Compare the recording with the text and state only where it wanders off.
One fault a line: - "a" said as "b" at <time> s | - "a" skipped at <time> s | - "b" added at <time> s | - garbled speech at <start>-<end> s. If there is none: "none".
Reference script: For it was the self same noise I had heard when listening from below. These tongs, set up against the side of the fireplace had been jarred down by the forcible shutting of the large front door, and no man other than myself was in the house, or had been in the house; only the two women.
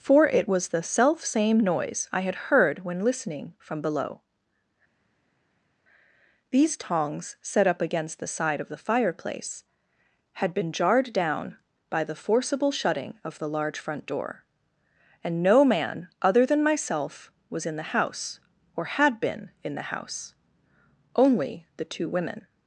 none